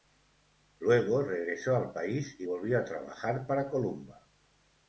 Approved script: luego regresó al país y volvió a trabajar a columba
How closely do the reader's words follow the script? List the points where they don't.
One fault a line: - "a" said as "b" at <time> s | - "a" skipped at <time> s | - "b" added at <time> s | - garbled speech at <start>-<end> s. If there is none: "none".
- "a" said as "para" at 3.5 s